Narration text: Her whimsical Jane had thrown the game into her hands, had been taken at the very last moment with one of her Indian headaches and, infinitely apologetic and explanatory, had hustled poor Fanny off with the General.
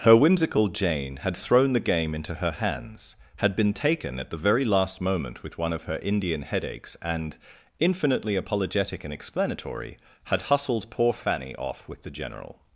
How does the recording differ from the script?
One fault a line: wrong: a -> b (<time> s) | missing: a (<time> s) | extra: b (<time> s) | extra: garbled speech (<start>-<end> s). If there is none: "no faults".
no faults